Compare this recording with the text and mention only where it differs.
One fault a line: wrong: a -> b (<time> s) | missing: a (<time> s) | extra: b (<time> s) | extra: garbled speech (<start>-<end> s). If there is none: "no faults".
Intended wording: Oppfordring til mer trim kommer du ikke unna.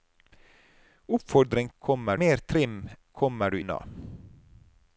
wrong: til -> kommer (1.8 s)
missing: ikke (3.6 s)